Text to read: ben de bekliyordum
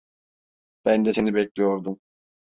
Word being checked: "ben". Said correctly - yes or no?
yes